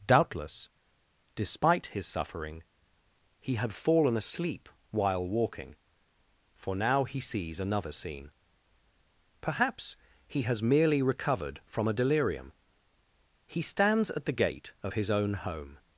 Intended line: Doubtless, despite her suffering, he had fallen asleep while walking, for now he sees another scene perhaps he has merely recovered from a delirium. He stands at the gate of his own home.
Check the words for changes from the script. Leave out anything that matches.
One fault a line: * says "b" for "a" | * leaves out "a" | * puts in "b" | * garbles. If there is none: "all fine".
* says "his" for "her"